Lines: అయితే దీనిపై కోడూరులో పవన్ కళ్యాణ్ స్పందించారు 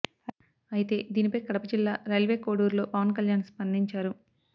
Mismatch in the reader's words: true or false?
true